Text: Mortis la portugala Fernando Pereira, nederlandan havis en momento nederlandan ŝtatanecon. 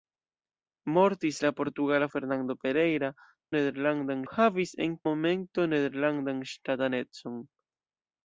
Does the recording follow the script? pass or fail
pass